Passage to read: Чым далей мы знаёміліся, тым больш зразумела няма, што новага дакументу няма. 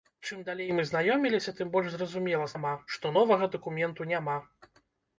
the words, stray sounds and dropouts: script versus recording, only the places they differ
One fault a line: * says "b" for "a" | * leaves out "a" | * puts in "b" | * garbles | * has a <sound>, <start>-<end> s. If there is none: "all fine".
all fine